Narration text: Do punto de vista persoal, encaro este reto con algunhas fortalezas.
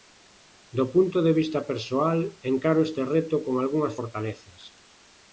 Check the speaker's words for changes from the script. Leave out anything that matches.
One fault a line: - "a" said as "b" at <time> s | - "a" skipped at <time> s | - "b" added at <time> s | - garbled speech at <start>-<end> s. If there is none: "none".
none